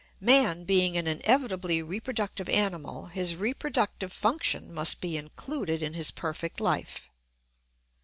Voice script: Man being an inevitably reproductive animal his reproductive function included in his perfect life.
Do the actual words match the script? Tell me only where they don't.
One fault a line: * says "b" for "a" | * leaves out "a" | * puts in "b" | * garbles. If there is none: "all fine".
* puts in "must be"